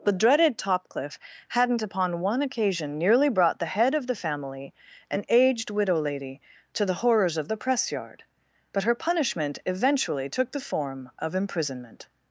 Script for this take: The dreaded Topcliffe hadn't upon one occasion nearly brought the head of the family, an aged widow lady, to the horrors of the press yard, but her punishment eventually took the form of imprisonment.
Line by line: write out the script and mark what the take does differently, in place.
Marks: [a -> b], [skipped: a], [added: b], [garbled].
The dreaded Topcliffe hadn't upon one occasion nearly brought the head of the family, an aged widow lady, to the horrors of the press yard, but her punishment eventually took the form of imprisonment.